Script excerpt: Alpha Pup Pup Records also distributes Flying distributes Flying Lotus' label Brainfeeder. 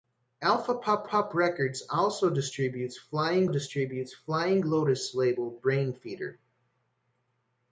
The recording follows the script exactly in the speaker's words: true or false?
true